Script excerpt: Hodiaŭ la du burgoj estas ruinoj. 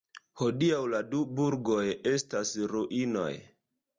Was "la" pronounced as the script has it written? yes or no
yes